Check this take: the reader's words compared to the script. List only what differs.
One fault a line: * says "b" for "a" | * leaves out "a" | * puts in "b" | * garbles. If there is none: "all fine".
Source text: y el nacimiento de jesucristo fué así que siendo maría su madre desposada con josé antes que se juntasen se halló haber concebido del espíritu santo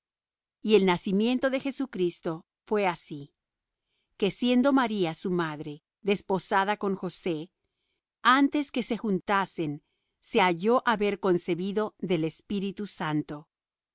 all fine